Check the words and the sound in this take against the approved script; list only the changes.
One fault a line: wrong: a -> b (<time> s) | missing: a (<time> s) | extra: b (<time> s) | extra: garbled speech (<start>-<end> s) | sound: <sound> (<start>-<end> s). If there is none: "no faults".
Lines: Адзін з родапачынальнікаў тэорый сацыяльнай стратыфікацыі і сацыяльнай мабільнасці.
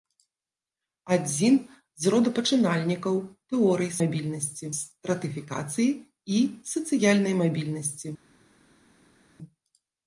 wrong: сацыяльнай -> мабільнасці (4.0 s)